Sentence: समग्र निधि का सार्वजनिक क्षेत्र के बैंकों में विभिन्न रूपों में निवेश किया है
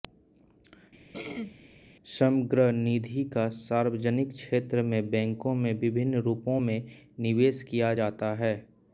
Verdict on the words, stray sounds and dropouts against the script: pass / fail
fail